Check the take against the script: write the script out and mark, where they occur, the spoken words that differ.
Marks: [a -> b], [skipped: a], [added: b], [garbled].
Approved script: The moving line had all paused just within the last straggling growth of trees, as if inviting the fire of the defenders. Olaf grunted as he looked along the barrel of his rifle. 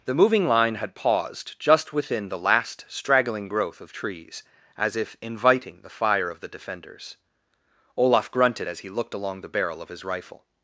The moving line had [skipped: all] paused just within the last straggling growth of trees, as if inviting the fire of the defenders. Olaf grunted as he looked along the barrel of his rifle.